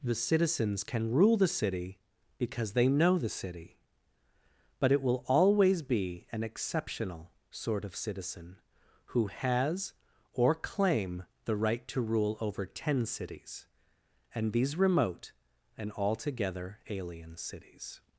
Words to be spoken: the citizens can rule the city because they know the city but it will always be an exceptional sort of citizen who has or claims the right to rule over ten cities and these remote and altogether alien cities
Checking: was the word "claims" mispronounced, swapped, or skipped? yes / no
yes